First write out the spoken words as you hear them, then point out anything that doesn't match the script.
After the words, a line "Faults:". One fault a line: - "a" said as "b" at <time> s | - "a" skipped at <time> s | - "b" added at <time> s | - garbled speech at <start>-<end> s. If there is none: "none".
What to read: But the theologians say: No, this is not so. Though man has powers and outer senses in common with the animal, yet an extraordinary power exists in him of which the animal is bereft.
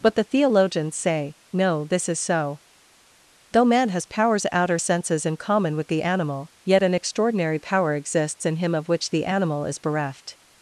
But the theologians say: No, this is so. Though man has powers outer senses in common with the animal, yet an extraordinary power exists in him of which the animal is bereft.
Faults:
- "not" skipped at 2.2 s
- "and" skipped at 4.5 s